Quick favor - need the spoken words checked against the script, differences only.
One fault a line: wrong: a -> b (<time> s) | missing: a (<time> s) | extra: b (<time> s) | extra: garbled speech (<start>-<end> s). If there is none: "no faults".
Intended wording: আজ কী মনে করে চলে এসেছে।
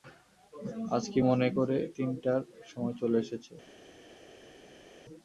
extra: তিনটার সময় (2.0 s)